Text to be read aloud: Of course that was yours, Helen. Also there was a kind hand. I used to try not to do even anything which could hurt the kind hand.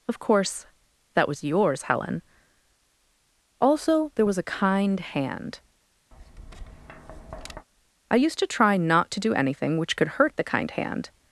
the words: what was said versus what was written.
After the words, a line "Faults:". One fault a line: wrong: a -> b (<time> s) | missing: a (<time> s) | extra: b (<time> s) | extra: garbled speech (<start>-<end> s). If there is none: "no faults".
Of course that was yours, Helen. Also there was a kind hand. I used to try not to do anything which could hurt the kind hand.
Faults:
missing: even (9.3 s)